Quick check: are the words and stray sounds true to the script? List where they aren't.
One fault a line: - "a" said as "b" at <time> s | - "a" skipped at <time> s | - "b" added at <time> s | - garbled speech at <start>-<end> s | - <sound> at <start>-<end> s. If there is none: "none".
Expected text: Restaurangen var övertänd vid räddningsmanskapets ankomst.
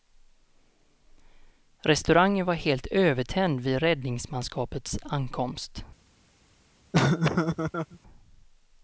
- "helt" added at 2.5 s
- laugh at 6.9-8.0 s